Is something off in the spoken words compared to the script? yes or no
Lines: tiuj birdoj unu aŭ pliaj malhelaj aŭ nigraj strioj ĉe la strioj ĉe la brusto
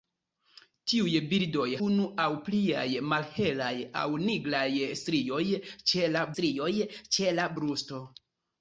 no